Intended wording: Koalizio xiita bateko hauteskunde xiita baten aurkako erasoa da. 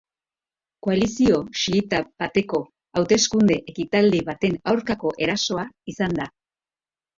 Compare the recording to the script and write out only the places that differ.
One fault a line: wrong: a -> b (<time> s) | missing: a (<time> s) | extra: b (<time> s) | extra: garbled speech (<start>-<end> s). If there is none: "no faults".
wrong: xiita -> ekitaldi (3.7 s)
extra: izan (6.0 s)